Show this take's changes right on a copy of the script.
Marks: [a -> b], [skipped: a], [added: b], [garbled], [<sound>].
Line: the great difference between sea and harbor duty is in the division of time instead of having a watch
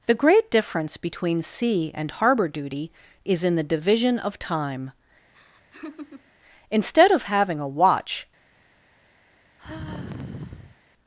the great difference between sea and harbor duty is in the division of time [laugh] instead of having a watch [sigh]